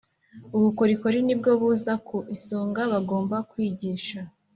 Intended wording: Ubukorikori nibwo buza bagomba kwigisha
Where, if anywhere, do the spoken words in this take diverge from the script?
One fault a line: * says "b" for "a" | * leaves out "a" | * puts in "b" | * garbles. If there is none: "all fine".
* puts in "ku isonga"